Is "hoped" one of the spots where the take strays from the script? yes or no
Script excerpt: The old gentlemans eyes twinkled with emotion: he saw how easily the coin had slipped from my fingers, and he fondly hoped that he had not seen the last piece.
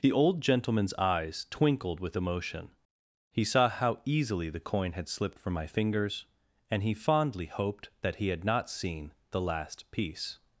no